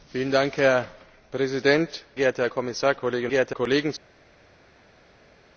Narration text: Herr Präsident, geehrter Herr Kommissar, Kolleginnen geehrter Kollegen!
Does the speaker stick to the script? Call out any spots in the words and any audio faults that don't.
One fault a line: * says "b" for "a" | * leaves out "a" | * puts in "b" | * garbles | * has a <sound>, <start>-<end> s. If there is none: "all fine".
all fine